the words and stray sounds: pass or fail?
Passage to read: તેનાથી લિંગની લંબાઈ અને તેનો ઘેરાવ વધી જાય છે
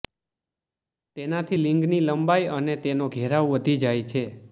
pass